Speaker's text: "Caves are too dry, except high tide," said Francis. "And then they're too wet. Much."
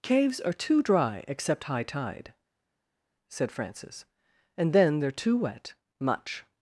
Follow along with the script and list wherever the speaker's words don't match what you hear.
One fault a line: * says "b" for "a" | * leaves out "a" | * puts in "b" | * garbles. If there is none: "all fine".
all fine